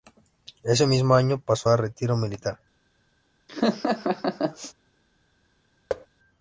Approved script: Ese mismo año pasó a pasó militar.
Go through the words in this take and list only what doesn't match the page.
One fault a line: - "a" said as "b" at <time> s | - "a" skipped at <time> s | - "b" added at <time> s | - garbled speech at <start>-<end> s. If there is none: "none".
- "pasó" said as "retiro" at 1.8 s